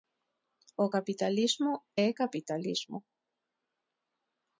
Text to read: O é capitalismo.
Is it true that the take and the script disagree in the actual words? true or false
true